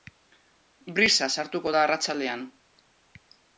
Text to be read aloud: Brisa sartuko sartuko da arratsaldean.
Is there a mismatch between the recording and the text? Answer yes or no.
yes